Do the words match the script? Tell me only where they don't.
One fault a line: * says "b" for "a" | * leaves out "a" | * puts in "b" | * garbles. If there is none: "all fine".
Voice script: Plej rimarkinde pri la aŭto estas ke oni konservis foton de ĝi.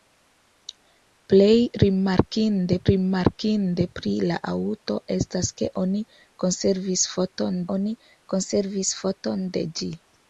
* puts in "rimarkinde"
* puts in "oni konservis foton"